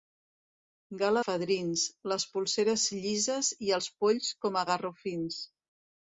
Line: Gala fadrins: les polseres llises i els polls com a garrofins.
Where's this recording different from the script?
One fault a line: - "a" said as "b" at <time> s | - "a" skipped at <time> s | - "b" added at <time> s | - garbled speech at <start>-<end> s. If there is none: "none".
none